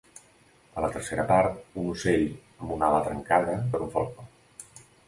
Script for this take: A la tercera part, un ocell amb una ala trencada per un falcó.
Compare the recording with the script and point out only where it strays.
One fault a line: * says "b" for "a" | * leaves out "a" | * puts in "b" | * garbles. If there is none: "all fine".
all fine